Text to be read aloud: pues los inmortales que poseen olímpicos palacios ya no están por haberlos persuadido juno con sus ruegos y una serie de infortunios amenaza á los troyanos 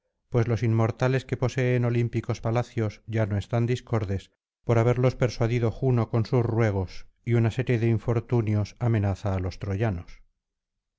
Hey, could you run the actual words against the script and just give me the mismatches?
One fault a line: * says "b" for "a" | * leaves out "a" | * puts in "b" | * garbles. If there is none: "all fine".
* puts in "discordes"